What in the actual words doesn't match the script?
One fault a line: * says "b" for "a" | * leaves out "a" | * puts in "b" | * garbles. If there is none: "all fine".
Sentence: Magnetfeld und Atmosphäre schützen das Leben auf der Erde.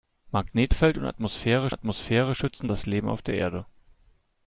* puts in "Atmosphäre"